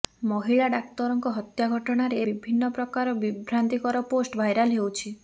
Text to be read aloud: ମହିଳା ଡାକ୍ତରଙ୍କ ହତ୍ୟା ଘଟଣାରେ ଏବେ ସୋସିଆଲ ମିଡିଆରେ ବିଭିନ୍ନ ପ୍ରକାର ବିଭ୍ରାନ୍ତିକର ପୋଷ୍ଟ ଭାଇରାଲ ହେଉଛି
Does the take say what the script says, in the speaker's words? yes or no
no